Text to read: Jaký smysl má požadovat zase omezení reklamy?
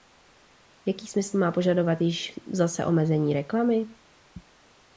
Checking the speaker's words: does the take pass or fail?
fail